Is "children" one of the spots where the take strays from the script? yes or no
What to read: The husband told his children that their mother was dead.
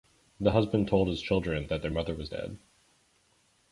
no